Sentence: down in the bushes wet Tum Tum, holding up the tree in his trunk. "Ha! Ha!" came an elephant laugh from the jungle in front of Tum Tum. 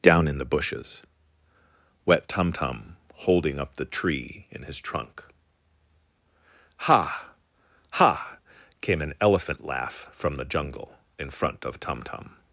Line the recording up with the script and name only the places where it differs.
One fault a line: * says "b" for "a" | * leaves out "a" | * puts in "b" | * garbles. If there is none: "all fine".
all fine